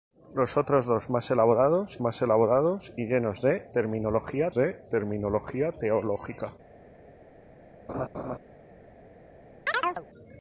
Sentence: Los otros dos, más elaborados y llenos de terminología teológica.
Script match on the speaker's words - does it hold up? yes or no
no